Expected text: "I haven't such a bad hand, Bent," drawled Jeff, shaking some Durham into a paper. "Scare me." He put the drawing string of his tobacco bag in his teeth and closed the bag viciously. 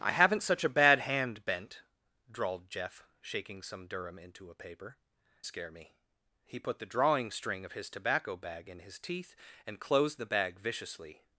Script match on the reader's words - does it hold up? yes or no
yes